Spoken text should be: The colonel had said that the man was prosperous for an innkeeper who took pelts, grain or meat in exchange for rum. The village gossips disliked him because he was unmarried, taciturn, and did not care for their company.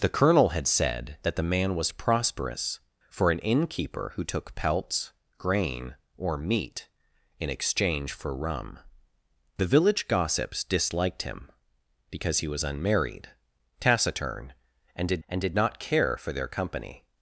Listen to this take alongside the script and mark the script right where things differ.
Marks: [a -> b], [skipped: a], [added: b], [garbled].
The colonel had said that the man was prosperous for an innkeeper who took pelts, grain or meat in exchange for rum. The village gossips disliked him because he was unmarried, taciturn, and did [added: and did] not care for their company.